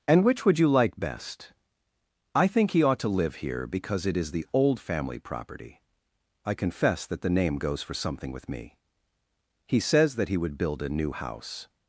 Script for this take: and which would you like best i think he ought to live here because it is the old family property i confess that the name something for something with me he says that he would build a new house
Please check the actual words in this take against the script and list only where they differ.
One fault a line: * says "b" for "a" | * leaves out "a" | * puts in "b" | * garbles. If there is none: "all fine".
* says "goes" for "something"